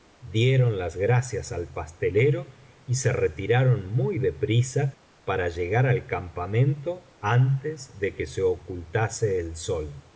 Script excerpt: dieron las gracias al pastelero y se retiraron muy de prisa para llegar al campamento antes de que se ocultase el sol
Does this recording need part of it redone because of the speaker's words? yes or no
no